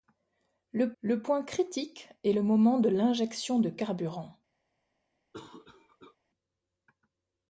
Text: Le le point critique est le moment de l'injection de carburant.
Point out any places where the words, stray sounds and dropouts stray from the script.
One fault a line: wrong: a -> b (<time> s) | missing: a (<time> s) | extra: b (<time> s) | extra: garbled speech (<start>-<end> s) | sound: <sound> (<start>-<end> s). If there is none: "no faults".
sound: cough (5.3-6.2 s)